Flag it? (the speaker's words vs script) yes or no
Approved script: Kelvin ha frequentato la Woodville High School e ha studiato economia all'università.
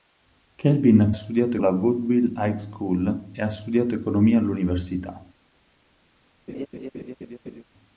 yes